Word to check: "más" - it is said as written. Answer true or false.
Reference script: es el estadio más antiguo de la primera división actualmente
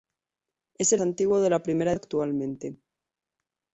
false